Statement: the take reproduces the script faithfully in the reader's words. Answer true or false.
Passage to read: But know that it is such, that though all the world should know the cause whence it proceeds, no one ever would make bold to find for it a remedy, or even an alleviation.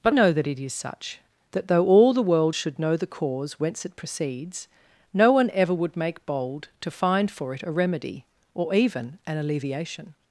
true